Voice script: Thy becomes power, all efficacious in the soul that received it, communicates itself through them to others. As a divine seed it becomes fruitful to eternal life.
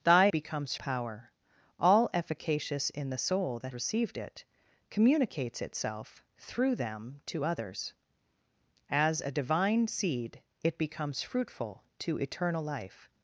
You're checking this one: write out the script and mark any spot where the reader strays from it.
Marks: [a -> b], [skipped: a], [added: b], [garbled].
Thy becomes power, all efficacious in the soul that received it, communicates itself through them to others. As a divine seed it becomes fruitful to eternal life.